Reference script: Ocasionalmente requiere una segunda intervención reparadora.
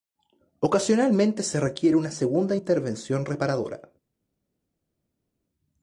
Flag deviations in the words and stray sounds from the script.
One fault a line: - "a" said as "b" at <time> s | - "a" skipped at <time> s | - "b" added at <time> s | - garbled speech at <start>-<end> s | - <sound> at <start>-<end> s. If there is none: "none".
- "se" added at 1.4 s